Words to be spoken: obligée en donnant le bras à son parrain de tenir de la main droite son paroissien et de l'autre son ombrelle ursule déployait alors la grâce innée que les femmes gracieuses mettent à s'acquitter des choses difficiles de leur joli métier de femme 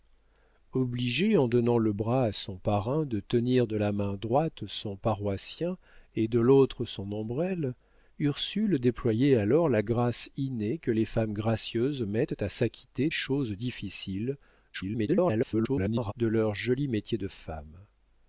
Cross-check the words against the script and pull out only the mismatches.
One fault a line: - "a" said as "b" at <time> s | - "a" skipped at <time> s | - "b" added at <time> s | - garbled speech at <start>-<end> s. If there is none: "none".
- "des" skipped at 13.1 s
- garbled speech at 14.7-16.1 s